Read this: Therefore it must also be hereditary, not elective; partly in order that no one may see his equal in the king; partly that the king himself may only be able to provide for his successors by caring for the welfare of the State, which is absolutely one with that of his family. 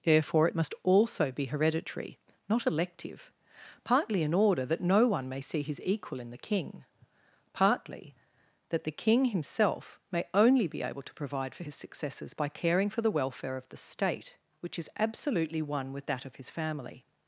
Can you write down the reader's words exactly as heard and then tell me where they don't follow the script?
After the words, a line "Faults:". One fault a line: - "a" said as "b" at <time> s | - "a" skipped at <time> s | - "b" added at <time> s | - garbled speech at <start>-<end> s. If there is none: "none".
Therefore it must also be hereditary, not elective; partly in order that no one may see his equal in the king; partly that the king himself may only be able to provide for his successors by caring for the welfare of the State, which is absolutely one with that of his family.
Faults:
none